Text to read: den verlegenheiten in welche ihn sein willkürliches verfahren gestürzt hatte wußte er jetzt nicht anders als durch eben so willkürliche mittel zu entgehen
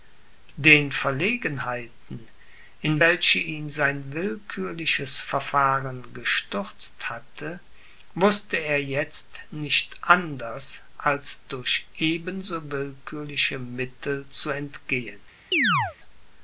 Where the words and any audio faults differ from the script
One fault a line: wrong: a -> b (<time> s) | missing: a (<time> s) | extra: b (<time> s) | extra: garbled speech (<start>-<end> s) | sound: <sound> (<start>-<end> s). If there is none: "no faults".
sound: chirp (15.5-16.0 s)